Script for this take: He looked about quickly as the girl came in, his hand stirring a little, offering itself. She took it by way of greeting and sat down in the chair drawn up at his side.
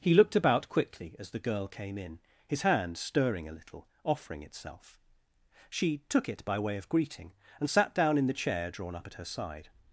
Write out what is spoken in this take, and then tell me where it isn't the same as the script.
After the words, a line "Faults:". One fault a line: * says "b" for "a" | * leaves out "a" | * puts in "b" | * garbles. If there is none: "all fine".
He looked about quickly as the girl came in, his hand stirring a little, offering itself. She took it by way of greeting and sat down in the chair drawn up at her side.
Faults:
* says "her" for "his"